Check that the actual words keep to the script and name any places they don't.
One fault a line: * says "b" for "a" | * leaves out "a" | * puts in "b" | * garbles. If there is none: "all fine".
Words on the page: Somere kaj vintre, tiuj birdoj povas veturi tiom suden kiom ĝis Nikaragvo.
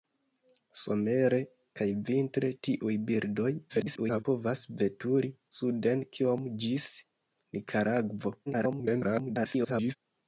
* garbles
* leaves out "tiom"
* garbles